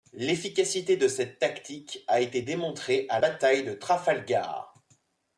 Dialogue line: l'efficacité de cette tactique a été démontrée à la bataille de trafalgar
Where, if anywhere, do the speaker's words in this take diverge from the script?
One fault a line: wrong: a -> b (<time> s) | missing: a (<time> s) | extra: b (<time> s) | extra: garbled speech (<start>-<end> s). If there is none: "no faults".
missing: la (3.2 s)